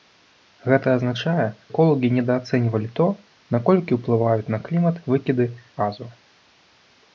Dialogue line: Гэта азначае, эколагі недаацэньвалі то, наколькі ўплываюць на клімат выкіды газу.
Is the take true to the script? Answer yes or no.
yes